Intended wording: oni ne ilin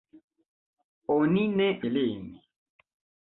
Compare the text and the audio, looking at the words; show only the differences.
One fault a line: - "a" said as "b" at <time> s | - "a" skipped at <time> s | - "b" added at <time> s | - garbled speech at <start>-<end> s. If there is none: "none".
none